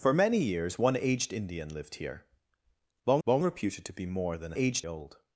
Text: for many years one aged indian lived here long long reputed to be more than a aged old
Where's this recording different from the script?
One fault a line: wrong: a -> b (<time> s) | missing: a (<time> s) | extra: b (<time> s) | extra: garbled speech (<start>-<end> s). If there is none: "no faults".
no faults